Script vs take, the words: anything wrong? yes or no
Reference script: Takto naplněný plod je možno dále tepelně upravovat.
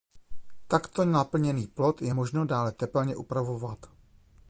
no